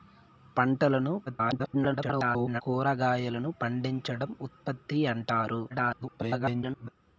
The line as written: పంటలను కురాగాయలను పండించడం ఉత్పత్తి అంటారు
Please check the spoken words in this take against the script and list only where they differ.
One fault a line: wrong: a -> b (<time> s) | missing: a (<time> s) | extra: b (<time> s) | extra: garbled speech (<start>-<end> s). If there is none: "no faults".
extra: garbled speech (1.3-2.6 s)
extra: garbled speech (5.7-6.9 s)